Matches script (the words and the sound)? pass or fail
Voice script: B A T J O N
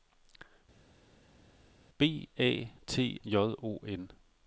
pass